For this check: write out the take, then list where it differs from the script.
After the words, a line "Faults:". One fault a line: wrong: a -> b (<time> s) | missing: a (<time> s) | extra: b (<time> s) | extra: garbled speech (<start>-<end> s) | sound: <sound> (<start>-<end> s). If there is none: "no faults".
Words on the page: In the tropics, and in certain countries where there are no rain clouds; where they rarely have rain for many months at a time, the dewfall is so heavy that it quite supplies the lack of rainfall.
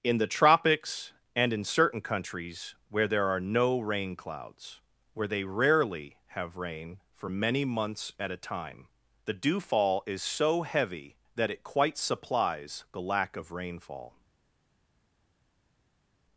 In the tropics, and in certain countries where there are no rain clouds; where they rarely have rain for many months at a time, the dewfall is so heavy that it quite supplies the lack of rainfall.
Faults:
no faults